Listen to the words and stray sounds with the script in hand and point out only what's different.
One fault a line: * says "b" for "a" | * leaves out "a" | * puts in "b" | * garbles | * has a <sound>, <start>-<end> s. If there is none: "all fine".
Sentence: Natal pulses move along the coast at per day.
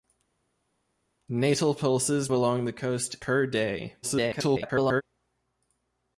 * leaves out "move"
* leaves out "at"
* garbles